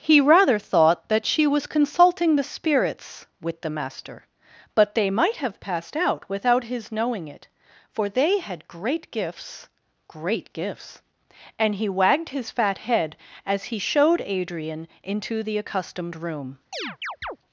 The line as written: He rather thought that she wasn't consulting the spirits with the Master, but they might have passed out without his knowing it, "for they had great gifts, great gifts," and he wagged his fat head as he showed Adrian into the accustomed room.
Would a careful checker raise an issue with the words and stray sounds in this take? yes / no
yes